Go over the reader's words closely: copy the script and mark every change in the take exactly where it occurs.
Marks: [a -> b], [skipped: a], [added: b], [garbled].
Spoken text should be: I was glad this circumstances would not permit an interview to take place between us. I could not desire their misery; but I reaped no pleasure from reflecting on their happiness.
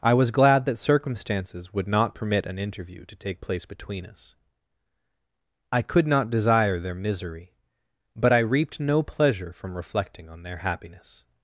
I was glad [this -> that] circumstances would not permit an interview to take place between us. I could not desire their misery; but I reaped no pleasure from reflecting on their happiness.